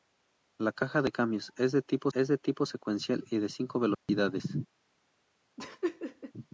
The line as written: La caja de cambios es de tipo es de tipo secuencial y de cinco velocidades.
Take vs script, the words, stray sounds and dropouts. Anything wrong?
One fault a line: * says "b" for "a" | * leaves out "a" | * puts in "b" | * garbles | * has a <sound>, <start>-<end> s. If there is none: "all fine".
* has a dropout, 3.9-4.1 s
* has a laugh, 5.6-6.3 s